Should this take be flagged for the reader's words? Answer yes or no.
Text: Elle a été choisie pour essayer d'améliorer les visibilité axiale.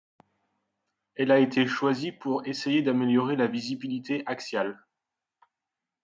yes